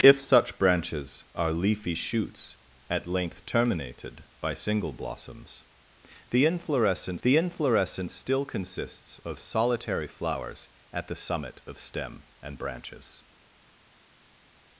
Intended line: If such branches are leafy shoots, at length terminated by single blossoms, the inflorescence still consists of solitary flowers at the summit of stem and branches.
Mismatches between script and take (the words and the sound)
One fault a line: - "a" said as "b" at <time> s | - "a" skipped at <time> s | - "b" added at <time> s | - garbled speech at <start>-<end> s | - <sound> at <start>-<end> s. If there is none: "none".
- "the inflorescence" added at 7.2 s